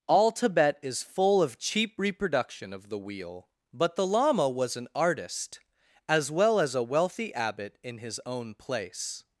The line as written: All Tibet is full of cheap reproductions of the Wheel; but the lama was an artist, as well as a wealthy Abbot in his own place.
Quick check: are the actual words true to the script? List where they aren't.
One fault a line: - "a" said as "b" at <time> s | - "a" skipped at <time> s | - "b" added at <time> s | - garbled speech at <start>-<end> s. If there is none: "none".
- "reproductions" said as "reproduction" at 2.0 s